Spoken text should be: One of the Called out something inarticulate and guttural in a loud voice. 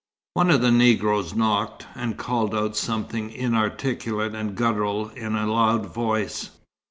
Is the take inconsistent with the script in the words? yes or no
yes